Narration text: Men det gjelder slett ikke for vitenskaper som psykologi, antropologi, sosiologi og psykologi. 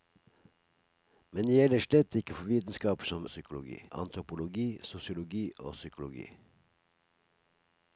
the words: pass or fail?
pass